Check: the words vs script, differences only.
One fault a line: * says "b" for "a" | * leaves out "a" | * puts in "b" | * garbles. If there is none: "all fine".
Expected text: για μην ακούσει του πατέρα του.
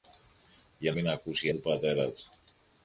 all fine